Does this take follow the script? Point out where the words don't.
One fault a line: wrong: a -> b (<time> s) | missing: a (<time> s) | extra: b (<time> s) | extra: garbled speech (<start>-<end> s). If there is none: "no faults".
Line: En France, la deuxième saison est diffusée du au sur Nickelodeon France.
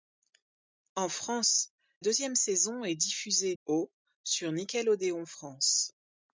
missing: la (1.7 s)
missing: du (3.6 s)